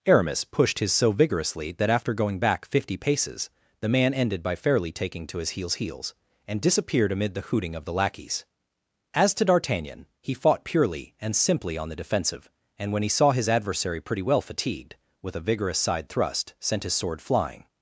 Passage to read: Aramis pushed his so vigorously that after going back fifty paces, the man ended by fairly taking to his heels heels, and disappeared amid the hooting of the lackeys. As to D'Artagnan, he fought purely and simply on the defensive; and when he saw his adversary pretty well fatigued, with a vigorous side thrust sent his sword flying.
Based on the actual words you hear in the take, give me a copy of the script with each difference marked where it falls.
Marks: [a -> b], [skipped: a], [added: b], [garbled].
Aramis pushed his so vigorously that after going back fifty paces, the man ended by fairly taking to his heels heels, and disappeared amid the hooting of the lackeys. As to D'Artagnan, he fought purely and simply on the defensive; and when he saw his adversary pretty well fatigued, with a vigorous side thrust sent his sword flying.